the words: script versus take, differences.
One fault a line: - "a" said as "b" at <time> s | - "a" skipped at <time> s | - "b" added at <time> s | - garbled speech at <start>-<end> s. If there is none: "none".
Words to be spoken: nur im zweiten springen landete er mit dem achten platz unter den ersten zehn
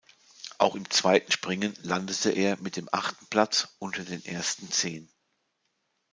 - "nur" said as "auch" at 0.6 s